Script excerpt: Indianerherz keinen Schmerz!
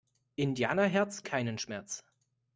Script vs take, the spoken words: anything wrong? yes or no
no